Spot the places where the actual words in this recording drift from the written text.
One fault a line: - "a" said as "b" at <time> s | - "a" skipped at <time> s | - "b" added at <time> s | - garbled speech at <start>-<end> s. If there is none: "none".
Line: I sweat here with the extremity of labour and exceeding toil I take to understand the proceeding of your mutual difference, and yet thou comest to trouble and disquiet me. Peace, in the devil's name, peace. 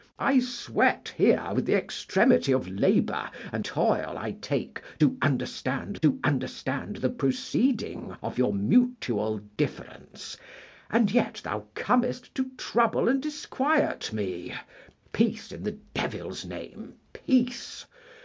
- "exceeding" skipped at 3.6 s
- "to understand" added at 6.0 s